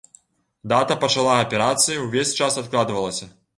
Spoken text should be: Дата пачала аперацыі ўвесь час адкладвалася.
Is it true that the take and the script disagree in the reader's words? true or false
false